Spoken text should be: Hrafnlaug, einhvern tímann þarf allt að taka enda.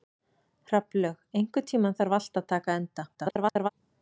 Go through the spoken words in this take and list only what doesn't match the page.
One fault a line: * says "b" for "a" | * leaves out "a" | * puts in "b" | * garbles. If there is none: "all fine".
* garbles